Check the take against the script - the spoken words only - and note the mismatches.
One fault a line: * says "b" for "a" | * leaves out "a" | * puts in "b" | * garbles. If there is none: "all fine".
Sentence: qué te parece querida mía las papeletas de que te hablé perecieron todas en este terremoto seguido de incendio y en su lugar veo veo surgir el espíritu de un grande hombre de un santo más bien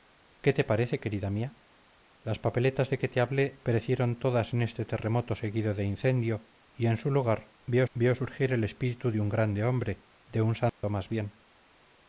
all fine